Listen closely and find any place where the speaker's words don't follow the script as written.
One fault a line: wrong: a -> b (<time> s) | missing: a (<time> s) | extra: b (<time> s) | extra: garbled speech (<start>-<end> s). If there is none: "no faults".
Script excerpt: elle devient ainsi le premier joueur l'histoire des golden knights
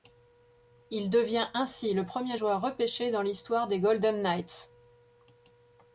wrong: elle -> il (0.9 s)
extra: repêché dans (2.6 s)